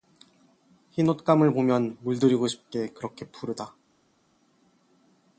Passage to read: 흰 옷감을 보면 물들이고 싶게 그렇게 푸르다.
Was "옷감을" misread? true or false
false